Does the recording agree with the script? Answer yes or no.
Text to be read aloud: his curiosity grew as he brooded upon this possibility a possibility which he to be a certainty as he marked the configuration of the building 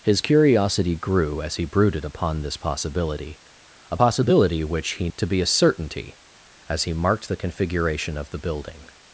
yes